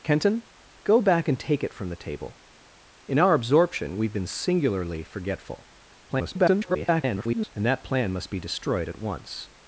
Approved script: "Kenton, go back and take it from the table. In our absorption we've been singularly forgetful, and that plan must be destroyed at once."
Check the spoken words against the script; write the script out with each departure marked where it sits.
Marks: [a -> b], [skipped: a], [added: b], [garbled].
"Kenton, go back and take it from the table. In our absorption we've been singularly forgetful, [garbled] and that plan must be destroyed at once."